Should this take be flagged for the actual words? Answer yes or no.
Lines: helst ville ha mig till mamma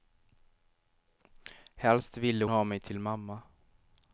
no